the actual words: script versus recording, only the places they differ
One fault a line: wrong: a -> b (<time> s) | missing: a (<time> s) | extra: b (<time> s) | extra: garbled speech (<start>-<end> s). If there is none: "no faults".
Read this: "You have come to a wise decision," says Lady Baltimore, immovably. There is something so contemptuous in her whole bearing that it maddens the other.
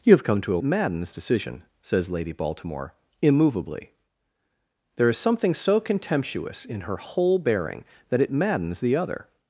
wrong: wise -> maddens (0.6 s)